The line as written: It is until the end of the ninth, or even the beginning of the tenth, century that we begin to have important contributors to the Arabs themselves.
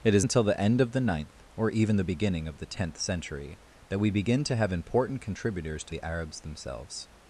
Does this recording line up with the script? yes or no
yes